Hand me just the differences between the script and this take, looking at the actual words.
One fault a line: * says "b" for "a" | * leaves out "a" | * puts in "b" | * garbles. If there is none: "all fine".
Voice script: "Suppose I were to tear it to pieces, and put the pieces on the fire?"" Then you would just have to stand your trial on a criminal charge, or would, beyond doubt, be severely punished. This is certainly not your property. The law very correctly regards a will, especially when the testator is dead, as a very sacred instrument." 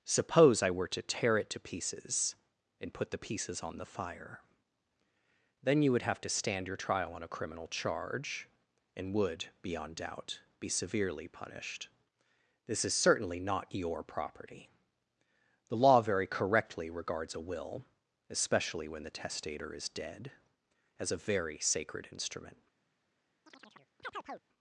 * leaves out "just"
* says "and" for "or"